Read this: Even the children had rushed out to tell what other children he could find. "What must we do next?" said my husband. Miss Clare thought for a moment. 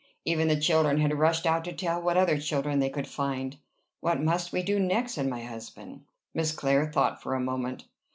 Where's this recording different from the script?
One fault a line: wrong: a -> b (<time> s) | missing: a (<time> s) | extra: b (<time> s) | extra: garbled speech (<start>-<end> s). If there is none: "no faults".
wrong: he -> they (2.8 s)